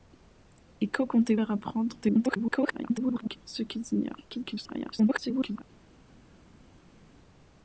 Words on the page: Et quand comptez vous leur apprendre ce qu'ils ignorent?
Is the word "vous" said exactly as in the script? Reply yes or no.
no